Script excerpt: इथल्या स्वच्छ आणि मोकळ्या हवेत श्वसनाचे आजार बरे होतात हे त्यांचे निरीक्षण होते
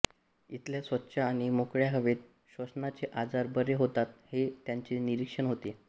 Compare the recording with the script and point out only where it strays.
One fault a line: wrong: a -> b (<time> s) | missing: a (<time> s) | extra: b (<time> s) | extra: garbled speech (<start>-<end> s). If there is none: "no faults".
no faults